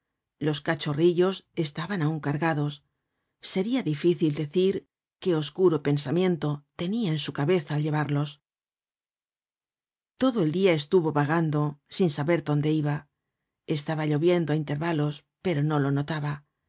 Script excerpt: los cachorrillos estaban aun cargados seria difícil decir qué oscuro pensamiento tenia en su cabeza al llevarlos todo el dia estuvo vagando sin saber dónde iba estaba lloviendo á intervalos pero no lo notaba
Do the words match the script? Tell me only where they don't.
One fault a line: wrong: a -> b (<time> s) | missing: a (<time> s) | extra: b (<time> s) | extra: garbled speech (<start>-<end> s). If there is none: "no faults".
no faults